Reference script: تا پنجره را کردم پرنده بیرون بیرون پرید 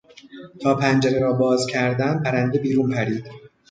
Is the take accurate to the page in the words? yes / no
no